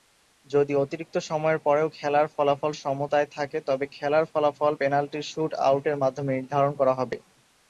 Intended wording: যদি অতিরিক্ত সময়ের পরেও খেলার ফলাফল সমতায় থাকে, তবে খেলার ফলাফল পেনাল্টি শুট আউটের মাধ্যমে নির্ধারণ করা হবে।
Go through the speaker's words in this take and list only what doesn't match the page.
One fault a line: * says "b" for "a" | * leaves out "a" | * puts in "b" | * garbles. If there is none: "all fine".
all fine